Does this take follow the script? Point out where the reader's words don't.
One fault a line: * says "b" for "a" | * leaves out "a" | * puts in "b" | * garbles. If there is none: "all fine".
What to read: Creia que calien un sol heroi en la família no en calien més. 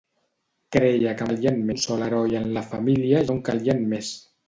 all fine